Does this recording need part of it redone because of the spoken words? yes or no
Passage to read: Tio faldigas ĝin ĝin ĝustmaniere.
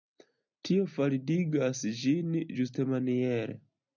yes